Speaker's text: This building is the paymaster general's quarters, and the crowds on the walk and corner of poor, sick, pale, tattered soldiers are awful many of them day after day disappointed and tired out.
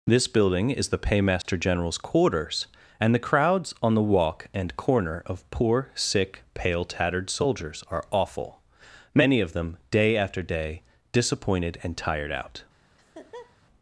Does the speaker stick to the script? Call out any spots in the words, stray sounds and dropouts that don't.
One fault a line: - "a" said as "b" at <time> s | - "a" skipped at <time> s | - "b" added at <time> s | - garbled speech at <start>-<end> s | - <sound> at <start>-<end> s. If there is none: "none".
- dropout at 1.4-1.4 s
- laugh at 13.0-13.6 s